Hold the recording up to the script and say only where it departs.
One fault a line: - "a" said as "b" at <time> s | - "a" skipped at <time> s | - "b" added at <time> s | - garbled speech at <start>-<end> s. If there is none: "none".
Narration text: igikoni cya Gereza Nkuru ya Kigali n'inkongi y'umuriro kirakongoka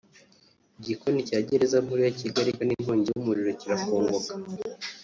none